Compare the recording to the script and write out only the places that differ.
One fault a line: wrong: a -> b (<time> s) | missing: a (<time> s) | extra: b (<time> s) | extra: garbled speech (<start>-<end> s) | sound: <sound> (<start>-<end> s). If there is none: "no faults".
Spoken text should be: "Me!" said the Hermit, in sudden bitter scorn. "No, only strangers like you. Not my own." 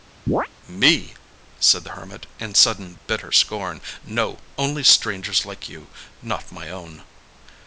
sound: chirp (0.3-0.5 s)